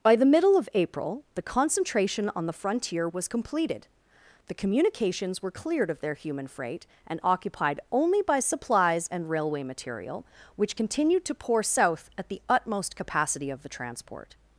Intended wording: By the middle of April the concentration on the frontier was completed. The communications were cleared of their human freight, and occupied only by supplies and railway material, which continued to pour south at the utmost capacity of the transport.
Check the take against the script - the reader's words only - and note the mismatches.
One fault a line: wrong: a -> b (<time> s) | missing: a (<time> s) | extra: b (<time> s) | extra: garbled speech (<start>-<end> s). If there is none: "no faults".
no faults